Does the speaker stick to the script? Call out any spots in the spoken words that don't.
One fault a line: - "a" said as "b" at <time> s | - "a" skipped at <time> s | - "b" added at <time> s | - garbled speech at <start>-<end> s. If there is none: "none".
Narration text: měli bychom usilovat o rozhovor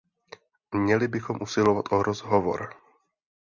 none